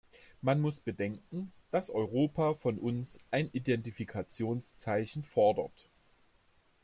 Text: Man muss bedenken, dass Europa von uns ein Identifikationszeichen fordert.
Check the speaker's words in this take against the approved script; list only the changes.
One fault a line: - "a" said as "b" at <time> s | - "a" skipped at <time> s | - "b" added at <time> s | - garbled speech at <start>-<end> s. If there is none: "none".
none